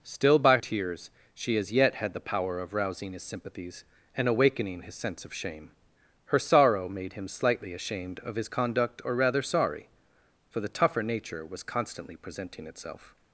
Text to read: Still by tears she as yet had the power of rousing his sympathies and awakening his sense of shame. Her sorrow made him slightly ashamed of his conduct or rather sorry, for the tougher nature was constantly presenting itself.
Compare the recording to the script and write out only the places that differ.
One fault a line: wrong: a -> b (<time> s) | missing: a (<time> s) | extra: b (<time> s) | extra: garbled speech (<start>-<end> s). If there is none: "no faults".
no faults